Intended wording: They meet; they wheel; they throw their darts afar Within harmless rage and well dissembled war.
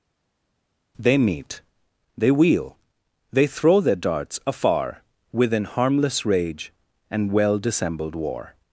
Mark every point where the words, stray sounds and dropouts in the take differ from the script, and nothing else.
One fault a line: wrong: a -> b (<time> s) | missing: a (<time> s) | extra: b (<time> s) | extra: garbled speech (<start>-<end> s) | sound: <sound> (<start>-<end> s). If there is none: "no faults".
no faults